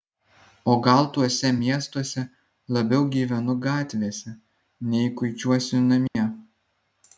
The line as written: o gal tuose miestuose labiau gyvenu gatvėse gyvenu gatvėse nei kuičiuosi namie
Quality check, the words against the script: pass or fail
fail